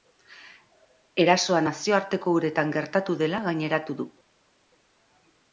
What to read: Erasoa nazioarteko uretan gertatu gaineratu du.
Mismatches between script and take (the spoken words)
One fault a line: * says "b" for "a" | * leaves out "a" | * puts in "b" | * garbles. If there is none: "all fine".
* puts in "dela"